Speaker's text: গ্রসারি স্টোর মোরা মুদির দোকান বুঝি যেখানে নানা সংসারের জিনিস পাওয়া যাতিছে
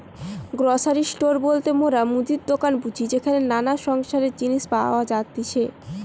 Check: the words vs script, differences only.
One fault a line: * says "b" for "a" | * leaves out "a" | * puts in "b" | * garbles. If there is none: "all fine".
* puts in "বলতে"